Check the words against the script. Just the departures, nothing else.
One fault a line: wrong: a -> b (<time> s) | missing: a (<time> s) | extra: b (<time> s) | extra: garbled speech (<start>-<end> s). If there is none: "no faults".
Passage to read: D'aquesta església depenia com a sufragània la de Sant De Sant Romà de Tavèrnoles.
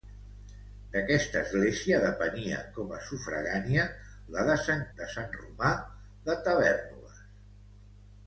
no faults